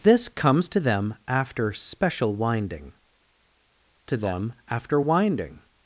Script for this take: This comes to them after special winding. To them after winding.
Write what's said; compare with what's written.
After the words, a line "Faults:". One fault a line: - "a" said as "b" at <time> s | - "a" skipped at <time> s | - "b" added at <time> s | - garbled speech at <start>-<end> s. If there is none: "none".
This comes to them after special winding. To them after winding.
Faults:
none